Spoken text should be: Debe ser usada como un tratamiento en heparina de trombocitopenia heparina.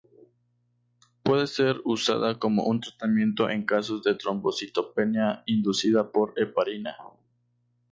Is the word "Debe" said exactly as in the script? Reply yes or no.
no